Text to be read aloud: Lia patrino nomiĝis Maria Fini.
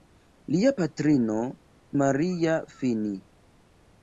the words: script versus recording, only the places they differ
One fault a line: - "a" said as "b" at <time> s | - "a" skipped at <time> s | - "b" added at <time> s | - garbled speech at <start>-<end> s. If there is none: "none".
- "nomiĝis" skipped at 1.4 s